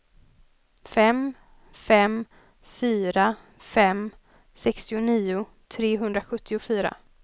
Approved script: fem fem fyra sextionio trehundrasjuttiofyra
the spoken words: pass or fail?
fail